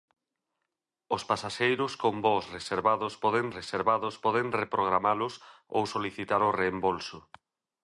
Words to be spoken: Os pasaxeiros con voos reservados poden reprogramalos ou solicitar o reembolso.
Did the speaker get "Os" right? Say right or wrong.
right